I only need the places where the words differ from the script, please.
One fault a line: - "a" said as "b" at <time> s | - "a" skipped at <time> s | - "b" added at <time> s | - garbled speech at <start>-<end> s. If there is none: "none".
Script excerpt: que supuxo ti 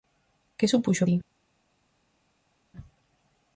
none